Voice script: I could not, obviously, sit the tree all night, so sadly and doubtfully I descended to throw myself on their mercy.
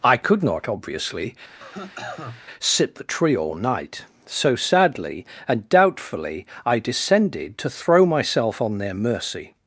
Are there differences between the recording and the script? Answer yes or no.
no